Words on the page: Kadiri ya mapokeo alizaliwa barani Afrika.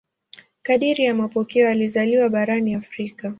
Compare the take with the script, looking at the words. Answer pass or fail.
pass